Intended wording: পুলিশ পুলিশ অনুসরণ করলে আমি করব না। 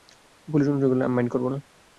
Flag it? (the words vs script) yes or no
yes